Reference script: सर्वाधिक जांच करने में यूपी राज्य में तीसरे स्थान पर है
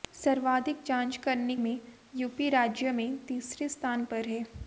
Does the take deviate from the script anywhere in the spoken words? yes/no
no